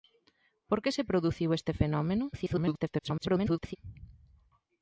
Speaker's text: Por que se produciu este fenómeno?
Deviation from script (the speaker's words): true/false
true